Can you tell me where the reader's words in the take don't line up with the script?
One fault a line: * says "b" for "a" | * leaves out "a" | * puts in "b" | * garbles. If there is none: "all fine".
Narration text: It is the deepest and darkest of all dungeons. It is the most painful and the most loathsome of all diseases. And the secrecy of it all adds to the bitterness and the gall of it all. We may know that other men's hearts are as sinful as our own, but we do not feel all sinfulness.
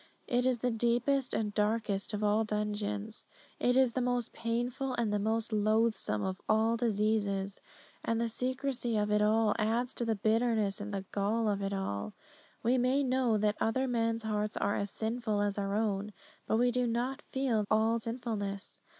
all fine